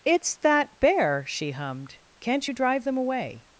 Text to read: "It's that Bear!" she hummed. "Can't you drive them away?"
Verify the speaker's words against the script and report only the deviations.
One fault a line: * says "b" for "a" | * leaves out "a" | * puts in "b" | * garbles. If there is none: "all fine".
all fine